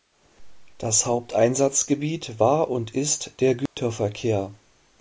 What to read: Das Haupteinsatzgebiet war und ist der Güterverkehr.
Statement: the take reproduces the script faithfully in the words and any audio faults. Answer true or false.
false